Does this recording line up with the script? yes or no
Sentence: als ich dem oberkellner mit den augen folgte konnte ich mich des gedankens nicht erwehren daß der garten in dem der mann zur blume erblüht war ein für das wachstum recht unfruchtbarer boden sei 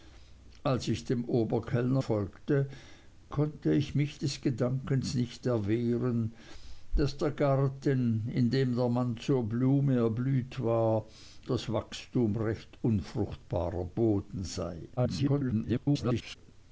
no